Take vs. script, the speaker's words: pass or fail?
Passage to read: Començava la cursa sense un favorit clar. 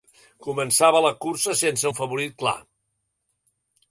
pass